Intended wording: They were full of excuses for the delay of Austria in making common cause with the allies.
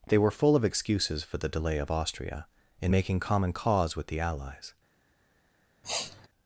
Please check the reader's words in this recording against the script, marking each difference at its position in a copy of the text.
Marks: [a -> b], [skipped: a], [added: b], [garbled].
They were full of excuses for the delay of Austria in making common cause with the allies.